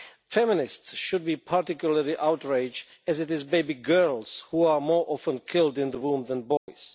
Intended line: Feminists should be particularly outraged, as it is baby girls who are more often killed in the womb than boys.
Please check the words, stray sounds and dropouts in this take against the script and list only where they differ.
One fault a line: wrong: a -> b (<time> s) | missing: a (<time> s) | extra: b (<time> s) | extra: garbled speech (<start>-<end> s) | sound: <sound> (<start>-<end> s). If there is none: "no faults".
sound: dropout (6.6-6.7 s)